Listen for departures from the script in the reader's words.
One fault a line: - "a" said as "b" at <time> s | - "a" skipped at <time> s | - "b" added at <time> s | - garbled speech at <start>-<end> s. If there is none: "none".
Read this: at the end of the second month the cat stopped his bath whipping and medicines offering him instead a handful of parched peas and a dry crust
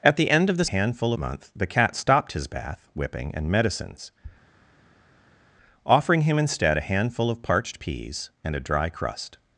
- "second" said as "handful" at 0.6 s